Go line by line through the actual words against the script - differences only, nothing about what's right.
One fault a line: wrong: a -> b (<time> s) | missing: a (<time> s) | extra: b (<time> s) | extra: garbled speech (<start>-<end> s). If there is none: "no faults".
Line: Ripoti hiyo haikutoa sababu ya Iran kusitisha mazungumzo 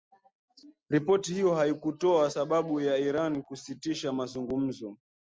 no faults